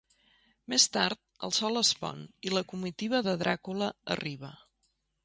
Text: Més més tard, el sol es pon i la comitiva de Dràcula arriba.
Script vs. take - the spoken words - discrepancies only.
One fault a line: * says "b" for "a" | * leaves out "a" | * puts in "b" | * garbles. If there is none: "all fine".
* leaves out "més"